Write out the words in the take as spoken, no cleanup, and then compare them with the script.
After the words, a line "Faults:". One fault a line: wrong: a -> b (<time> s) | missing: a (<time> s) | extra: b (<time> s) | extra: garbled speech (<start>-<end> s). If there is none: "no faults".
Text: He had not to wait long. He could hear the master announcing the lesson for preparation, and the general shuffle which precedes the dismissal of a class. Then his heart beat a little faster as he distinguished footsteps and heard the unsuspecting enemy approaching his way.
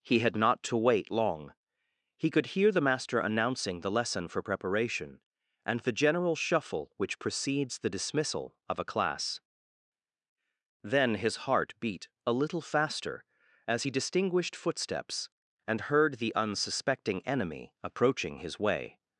He had not to wait long. He could hear the master announcing the lesson for preparation, and the general shuffle which precedes the dismissal of a class. Then his heart beat a little faster as he distinguished footsteps and heard the unsuspecting enemy approaching his way.
Faults:
no faults